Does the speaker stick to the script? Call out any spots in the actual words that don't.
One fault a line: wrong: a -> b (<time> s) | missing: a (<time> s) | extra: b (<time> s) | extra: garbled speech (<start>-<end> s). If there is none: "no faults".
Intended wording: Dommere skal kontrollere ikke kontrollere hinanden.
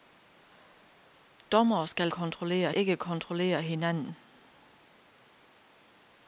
no faults